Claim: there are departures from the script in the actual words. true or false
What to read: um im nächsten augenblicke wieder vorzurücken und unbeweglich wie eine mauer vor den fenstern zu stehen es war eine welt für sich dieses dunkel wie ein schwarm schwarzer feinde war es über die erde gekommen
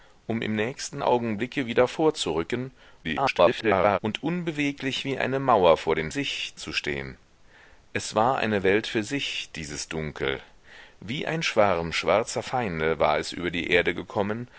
true